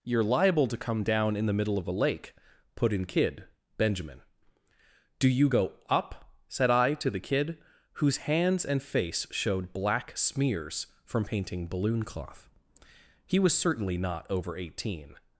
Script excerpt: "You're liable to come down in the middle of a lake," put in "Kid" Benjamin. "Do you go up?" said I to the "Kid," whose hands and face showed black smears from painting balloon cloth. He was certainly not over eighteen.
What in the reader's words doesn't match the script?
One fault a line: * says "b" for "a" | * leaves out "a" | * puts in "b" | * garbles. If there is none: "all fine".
all fine